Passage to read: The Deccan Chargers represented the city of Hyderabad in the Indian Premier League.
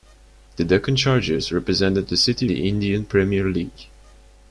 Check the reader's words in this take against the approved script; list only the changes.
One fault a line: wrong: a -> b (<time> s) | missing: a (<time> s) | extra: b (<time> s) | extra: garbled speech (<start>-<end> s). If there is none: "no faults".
missing: of Hyderabad in (2.5 s)